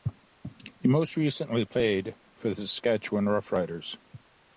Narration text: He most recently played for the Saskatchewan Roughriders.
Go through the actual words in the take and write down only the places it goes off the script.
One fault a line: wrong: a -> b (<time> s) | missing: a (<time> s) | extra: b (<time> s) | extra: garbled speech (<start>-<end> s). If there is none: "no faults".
no faults